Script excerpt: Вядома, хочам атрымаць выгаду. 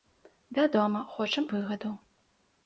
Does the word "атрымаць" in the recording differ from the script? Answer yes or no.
yes